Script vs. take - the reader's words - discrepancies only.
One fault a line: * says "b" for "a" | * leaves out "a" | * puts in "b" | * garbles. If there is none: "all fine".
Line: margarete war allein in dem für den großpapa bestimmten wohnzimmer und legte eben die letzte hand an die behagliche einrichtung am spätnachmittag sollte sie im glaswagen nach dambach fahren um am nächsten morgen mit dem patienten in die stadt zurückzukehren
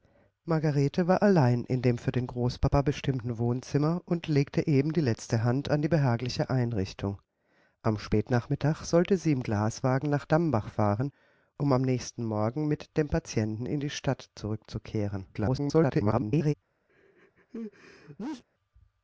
* garbles